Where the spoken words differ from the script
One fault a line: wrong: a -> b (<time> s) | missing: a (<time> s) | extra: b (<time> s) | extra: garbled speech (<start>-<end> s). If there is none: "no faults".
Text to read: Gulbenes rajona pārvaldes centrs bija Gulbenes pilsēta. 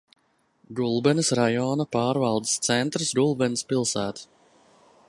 missing: bija (3.1 s)